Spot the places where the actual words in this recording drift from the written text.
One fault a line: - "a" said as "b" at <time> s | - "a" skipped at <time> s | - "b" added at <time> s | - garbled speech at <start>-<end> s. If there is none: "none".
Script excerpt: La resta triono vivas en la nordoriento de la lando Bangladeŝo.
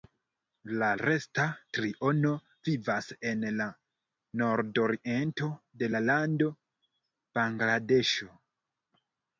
none